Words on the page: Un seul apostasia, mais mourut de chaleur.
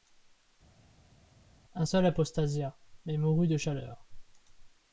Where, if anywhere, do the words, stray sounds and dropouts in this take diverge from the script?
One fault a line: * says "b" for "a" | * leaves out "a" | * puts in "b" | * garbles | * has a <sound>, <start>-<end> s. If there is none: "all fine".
all fine